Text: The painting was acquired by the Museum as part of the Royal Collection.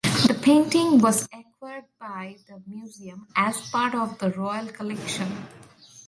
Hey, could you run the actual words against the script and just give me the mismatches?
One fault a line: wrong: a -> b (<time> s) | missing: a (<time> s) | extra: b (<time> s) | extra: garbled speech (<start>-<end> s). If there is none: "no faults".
no faults